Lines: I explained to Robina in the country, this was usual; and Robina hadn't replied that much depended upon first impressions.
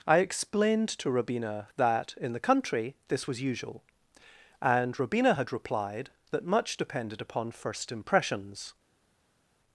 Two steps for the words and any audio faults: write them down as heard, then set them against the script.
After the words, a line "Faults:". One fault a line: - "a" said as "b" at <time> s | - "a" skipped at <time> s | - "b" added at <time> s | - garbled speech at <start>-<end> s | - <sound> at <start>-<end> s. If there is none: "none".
I explained to Robina that, in the country, this was usual; and Robina had replied that much depended upon first impressions.
Faults:
- "that" added at 1.8 s
- "hadn't" said as "had" at 5.3 s